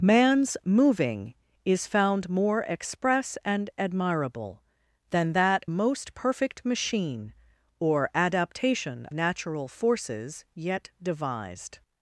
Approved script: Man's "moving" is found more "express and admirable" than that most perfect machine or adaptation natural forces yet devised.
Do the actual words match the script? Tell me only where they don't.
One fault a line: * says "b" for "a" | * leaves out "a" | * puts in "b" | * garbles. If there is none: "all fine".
all fine